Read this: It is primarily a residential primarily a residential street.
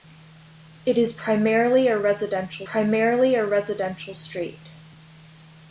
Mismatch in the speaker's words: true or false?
false